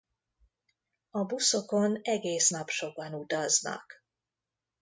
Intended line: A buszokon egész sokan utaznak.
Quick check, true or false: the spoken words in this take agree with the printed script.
false